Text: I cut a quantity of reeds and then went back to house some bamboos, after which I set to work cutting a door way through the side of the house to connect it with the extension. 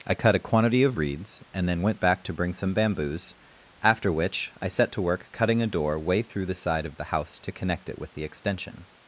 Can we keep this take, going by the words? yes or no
no